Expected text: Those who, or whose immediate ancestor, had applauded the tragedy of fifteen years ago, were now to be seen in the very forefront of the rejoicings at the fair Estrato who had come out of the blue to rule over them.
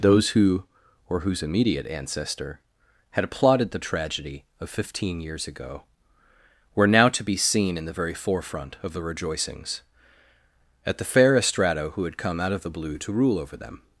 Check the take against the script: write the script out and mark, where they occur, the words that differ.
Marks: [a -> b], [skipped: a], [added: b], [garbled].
Those who, or whose immediate ancestor, had applauded the tragedy of fifteen years ago, were now to be seen in the very forefront of the rejoicings at the fair Estrato who had come out of the blue to rule over them.